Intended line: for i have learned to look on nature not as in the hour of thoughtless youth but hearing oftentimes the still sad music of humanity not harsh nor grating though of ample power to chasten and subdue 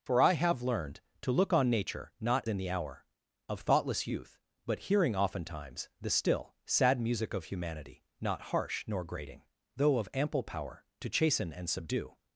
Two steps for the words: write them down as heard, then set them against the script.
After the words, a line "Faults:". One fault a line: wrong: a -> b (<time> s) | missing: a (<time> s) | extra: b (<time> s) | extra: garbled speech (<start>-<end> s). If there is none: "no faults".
for i have learned to look on nature not in the hour of thoughtless youth but hearing oftentimes the still sad music of humanity not harsh nor grating though of ample power to chasten and subdue
Faults:
missing: as (2.4 s)